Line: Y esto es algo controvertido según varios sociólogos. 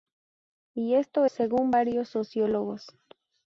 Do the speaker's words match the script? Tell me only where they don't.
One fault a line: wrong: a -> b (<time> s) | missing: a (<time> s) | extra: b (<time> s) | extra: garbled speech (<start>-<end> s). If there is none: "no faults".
missing: es algo controvertido (1.2 s)